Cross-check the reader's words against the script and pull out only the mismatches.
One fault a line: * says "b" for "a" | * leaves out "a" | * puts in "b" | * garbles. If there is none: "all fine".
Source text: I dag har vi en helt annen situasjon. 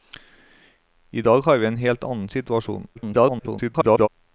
* garbles